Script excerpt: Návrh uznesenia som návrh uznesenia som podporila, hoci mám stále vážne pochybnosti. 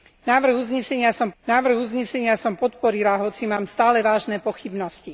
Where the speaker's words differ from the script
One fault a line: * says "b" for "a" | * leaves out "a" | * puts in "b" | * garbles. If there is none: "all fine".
all fine